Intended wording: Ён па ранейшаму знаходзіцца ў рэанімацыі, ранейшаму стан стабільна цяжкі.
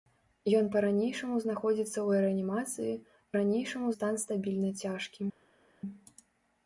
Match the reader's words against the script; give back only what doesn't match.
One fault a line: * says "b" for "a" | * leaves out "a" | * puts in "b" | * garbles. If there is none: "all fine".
all fine